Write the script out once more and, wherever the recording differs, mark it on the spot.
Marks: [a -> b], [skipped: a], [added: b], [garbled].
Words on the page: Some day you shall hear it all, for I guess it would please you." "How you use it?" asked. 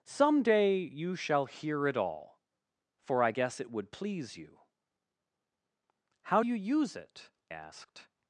Some day you shall hear it all, for I guess it would please you." "How you use it?" asked.